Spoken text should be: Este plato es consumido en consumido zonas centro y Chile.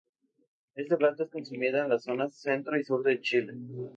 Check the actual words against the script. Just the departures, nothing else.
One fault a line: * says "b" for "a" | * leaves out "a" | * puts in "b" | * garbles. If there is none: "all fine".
* says "las" for "consumido"
* puts in "sur de"